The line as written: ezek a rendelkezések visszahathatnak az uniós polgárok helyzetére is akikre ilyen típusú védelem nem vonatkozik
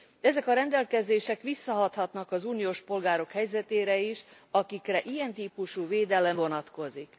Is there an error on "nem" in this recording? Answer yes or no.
yes